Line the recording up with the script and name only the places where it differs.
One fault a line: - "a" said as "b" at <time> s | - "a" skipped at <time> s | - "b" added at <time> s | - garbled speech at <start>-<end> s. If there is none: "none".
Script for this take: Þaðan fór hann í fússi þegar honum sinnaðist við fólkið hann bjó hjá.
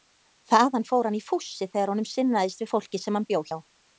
- "sem" added at 3.0 s